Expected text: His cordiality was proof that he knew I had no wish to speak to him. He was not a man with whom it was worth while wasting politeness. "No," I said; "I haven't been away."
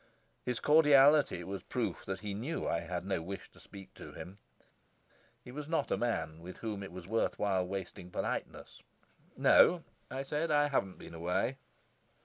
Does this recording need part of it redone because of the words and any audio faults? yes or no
no